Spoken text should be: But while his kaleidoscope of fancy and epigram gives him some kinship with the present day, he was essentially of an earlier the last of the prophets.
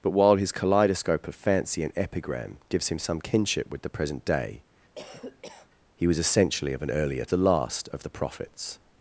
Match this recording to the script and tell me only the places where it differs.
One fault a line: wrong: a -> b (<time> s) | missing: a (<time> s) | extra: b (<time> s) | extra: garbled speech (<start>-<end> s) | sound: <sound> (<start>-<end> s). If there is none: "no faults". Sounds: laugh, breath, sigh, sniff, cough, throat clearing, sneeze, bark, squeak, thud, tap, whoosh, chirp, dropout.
sound: cough (5.0-5.7 s)